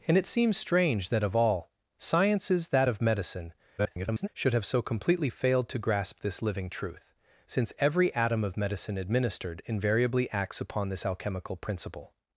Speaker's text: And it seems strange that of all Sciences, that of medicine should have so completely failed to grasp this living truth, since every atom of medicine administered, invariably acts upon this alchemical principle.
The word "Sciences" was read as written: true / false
true